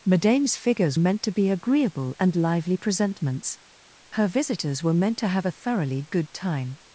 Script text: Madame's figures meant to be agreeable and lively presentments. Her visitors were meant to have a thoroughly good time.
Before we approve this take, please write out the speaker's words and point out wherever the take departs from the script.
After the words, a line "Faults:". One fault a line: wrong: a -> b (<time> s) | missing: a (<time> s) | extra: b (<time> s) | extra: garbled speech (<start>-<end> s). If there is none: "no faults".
Madame's figures meant to be agreeable and lively presentments. Her visitors were meant to have a thoroughly good time.
Faults:
no faults